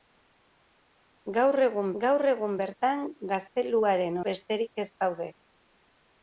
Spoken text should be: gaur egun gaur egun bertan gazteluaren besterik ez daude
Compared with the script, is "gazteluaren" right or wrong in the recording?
right